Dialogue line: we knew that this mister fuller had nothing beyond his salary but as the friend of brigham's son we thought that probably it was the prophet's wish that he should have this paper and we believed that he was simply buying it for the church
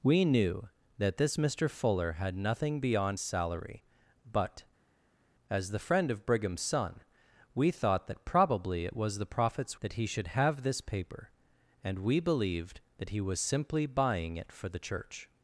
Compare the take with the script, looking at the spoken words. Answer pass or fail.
fail